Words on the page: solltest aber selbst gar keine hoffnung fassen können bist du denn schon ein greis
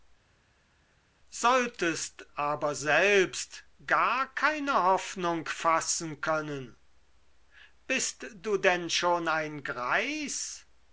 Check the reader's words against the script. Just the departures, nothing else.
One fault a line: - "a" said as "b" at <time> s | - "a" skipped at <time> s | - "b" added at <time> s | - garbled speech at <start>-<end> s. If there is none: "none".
none